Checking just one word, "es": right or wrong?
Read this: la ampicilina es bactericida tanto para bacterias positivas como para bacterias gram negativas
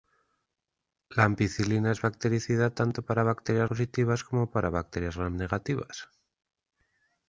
right